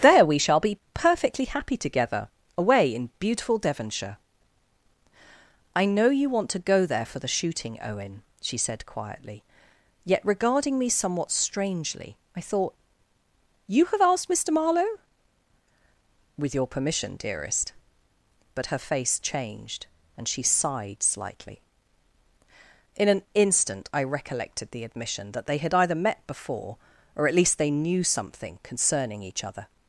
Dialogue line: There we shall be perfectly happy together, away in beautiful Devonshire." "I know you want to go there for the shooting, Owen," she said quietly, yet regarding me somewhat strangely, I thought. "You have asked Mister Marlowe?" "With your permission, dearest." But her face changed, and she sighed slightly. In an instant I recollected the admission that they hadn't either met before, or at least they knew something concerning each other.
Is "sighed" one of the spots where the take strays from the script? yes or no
no